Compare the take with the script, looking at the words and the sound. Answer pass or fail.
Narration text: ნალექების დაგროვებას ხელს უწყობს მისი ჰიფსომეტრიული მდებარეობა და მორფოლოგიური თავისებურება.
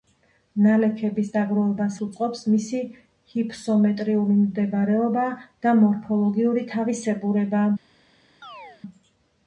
fail